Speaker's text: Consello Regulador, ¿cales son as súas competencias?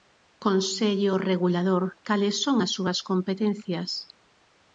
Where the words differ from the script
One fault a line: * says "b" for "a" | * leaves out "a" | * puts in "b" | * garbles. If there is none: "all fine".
all fine